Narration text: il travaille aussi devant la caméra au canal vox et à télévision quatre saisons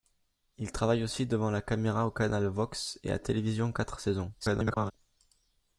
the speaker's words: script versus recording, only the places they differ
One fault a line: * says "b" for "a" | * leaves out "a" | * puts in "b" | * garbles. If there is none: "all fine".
* garbles